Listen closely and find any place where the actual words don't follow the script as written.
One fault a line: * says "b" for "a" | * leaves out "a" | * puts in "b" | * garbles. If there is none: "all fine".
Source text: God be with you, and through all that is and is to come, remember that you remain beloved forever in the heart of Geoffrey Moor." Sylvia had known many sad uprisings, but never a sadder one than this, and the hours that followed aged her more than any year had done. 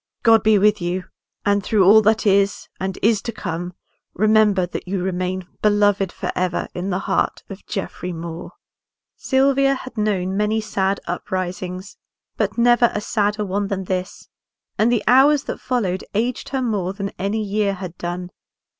all fine